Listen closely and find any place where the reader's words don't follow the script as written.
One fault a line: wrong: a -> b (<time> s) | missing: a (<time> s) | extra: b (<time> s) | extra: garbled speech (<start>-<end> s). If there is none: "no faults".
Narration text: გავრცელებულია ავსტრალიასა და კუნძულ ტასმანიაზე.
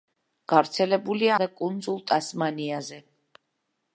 missing: ავსტრალიასა (1.4 s)